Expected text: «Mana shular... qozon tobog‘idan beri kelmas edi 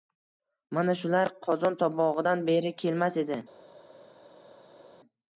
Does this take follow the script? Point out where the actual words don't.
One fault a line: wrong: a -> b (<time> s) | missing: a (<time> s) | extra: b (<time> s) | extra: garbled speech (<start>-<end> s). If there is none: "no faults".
no faults